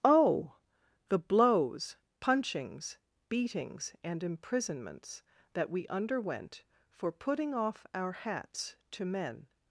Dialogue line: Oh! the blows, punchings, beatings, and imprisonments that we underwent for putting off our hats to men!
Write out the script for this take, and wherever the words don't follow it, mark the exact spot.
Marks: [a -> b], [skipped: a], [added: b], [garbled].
Oh! the blows, punchings, beatings, and imprisonments that we underwent for putting off our hats to men!